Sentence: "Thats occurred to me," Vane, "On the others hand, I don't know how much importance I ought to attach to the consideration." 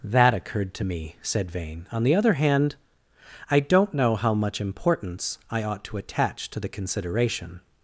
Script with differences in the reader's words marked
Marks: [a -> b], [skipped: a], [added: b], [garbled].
["Thats -> That] occurred to me," [added: said] Vane, "On the [others -> other] hand, I don't know how much importance I ought to attach to the consideration."